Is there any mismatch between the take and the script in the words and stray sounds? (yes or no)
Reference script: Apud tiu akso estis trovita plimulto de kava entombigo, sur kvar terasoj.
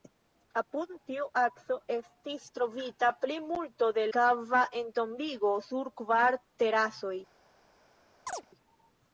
yes